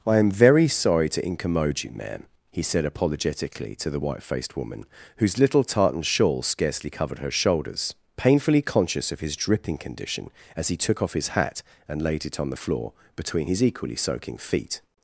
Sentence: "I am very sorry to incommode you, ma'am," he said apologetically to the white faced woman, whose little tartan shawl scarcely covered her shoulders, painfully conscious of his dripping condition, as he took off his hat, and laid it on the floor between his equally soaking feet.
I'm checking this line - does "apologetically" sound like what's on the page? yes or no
yes